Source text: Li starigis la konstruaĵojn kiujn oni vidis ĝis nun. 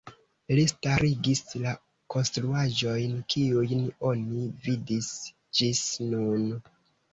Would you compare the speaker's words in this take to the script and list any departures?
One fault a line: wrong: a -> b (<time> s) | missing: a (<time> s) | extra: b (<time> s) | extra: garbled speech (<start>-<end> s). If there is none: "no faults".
no faults